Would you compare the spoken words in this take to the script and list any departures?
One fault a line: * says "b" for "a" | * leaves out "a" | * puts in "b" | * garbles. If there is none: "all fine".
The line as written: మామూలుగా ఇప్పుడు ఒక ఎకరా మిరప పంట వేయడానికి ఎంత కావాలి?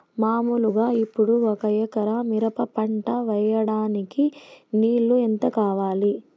* puts in "నీళ్లు"